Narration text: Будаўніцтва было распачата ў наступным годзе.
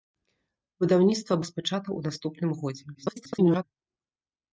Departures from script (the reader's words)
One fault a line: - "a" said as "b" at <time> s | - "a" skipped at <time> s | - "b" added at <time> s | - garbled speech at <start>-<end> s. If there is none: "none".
- "было" skipped at 1.4 s
- garbled speech at 2.9-3.6 s